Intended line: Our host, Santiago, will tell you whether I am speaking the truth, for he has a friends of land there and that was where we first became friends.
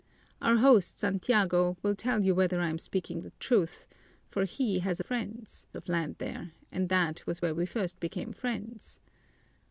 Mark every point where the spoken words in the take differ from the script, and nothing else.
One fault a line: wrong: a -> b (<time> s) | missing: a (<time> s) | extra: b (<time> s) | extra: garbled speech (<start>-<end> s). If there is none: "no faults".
no faults